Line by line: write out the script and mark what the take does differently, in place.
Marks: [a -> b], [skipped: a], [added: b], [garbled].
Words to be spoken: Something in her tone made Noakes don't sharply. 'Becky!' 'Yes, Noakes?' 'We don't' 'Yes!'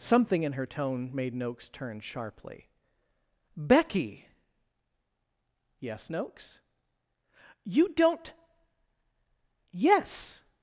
Something in her tone made Noakes [don't -> turn] sharply. 'Becky!' 'Yes, Noakes?' ['We -> You] don't' 'Yes!'